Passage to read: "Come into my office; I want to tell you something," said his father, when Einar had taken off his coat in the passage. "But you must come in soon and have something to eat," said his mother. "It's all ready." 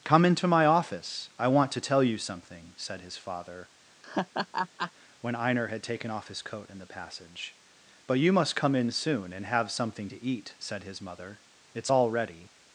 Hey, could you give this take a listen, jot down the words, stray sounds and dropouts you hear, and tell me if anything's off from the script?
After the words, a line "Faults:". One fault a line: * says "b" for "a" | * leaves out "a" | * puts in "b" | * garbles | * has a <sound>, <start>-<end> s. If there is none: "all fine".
"Come into my office; I want to tell you something," said his father, when Einar had taken off his coat in the passage. "But you must come in soon and have something to eat," said his mother. "It's all ready."
Faults:
* has a laugh, 4.0-4.9 s